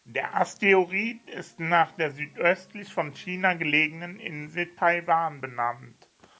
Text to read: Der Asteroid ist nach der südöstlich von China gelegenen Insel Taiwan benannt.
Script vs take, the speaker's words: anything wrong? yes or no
no